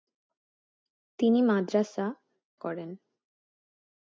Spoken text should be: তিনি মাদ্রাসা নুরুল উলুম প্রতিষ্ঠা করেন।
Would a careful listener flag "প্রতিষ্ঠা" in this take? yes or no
yes